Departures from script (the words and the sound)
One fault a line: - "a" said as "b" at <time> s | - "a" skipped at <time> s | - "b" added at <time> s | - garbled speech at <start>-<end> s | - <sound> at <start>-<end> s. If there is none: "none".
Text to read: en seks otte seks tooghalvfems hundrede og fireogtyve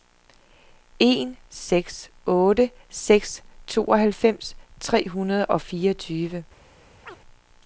- "tre" added at 4.8 s
- chirp at 7.0-7.2 s